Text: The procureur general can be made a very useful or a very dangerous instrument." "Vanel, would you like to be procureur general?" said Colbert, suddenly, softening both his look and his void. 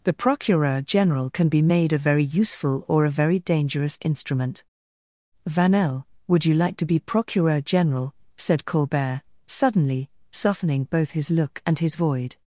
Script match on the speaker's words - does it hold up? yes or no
yes